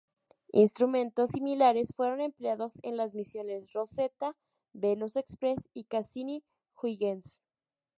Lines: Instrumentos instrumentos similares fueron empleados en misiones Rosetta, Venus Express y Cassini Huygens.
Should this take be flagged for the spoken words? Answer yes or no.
yes